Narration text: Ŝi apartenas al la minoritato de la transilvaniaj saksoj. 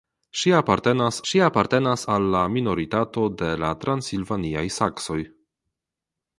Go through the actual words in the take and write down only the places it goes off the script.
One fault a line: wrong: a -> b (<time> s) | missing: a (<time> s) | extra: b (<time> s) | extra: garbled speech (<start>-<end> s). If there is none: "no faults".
extra: ŝi apartenas (1.3 s)